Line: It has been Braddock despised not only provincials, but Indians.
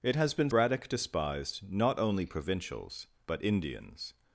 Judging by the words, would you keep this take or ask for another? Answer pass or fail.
pass